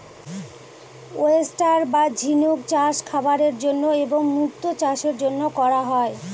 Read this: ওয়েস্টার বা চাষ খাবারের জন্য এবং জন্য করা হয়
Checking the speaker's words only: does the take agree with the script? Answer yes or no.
no